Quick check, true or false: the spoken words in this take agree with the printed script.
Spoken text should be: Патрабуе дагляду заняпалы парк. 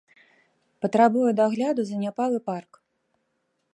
true